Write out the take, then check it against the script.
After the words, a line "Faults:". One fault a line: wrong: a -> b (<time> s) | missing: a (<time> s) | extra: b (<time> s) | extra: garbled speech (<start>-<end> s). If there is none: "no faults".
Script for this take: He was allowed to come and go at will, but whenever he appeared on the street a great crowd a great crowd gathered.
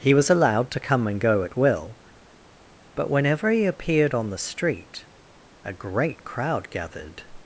He was allowed to come and go at will, but whenever he appeared on the street a great crowd gathered.
Faults:
missing: a great crowd (6.7 s)